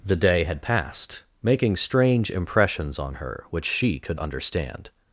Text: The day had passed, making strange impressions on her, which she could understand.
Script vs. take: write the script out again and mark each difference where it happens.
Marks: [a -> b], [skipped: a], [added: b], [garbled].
The day had passed, making strange impressions on her, which she could understand.